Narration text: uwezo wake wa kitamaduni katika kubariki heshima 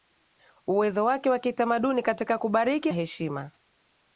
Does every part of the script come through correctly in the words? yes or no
yes